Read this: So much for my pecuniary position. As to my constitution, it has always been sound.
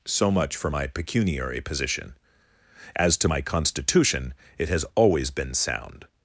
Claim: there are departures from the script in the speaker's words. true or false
false